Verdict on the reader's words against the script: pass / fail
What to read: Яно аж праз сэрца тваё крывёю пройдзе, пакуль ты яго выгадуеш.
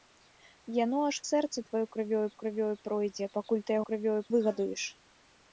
fail